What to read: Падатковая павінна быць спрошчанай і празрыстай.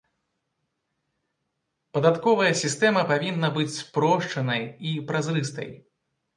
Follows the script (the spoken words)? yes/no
no